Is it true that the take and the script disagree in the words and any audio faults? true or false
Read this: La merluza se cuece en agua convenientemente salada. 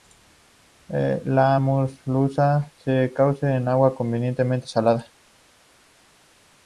false